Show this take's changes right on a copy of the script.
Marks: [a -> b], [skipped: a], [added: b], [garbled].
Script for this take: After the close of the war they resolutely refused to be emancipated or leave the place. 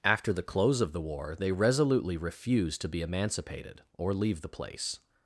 After the close of the war they resolutely refused to be emancipated or leave the place.